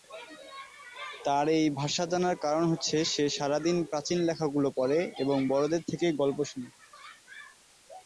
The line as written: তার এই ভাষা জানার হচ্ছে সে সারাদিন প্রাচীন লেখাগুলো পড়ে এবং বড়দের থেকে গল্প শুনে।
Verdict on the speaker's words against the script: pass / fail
fail